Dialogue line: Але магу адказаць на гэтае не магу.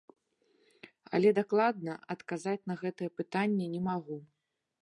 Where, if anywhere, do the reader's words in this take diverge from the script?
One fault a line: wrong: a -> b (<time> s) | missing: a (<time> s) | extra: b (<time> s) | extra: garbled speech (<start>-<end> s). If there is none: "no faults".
wrong: магу -> дакладна (1.4 s)
extra: пытанне (3.2 s)